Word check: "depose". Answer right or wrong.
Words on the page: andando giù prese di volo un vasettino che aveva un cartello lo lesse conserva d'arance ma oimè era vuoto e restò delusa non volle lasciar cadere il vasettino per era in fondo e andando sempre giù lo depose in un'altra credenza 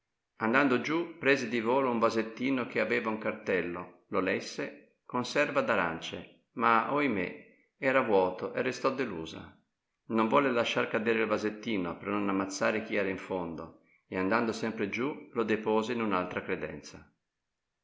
right